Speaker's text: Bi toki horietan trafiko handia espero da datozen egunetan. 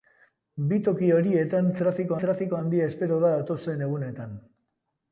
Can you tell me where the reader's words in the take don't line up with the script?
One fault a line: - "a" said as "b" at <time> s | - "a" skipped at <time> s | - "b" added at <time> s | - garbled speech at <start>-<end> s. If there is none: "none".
- "trafiko" added at 2.2 s